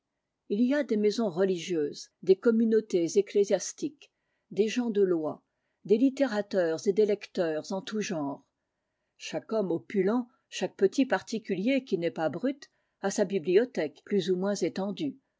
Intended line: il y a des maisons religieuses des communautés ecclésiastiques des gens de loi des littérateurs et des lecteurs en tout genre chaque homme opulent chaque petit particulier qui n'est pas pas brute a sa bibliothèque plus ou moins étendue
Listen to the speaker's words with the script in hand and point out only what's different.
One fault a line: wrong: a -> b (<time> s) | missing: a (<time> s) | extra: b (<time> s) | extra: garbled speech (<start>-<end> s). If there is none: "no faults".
missing: pas (12.3 s)